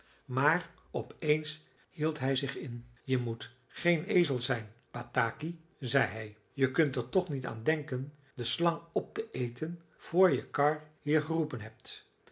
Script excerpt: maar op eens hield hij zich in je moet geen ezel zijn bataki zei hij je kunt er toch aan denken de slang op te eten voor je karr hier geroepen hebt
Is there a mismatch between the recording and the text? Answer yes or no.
yes